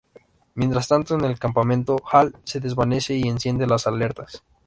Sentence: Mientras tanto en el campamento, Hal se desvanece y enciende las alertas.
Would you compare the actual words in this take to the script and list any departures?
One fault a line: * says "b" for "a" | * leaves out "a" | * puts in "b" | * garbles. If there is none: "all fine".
all fine